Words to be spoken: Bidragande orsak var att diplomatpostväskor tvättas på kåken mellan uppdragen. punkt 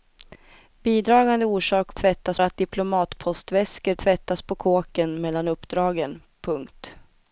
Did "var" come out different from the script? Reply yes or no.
yes